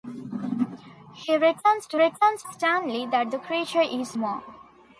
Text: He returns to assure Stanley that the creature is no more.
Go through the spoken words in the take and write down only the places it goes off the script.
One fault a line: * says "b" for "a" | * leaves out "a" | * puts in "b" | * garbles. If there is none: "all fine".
* says "returns" for "assure"
* leaves out "no"